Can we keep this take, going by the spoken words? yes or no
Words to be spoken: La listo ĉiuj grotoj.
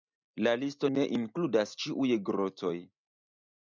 no